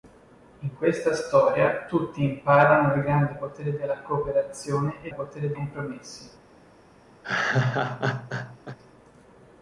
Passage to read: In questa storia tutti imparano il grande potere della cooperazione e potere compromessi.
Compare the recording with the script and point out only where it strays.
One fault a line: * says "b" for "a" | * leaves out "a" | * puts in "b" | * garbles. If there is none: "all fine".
all fine